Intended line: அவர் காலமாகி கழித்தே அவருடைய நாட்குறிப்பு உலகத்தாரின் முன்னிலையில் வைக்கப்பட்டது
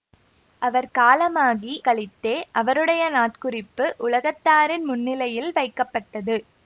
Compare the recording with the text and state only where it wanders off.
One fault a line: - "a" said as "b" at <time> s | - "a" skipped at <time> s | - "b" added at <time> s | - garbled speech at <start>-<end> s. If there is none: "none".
none